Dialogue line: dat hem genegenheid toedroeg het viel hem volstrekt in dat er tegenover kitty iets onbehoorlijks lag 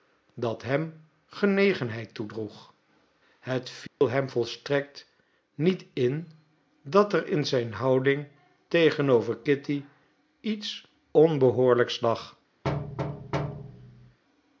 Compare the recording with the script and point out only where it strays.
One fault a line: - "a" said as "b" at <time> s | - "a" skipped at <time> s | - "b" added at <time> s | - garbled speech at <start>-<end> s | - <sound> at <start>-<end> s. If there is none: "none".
- dropout at 3.9-4.0 s
- "niet" added at 5.5 s
- "in zijn houding" added at 7.3 s
- thud at 12.6-14.2 s